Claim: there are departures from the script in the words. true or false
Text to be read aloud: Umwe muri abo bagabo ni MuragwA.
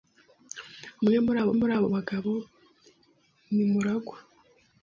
true